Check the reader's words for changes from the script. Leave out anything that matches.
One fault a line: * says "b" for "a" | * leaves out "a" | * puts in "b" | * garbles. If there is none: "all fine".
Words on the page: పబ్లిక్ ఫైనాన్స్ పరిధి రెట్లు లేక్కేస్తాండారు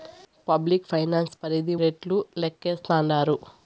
all fine